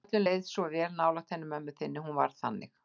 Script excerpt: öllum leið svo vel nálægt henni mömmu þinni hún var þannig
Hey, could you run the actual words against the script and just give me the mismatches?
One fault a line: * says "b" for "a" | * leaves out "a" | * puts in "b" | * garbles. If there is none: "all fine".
all fine